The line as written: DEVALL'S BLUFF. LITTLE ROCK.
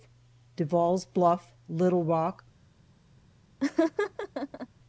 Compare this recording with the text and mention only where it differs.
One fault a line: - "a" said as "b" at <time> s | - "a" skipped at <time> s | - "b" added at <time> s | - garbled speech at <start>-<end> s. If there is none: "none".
none